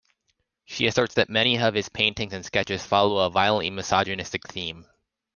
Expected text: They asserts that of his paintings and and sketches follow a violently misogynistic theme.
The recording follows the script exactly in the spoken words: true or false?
false